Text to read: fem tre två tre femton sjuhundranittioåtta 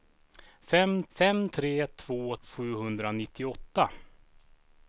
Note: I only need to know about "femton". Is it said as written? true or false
false